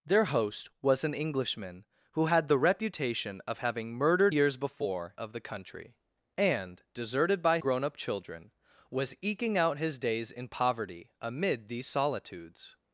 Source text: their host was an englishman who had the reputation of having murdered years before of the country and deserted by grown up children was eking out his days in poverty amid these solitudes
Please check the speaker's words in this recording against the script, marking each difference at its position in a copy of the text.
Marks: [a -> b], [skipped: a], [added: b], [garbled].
their host was an englishman who had the reputation of having murdered years before of the country and deserted by grown up children was eking out his days in poverty amid these solitudes